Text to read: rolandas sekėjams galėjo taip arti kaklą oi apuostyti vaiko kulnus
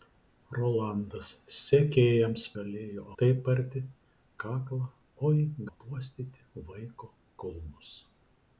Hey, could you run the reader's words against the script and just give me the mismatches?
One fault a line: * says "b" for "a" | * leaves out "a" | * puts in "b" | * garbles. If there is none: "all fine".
all fine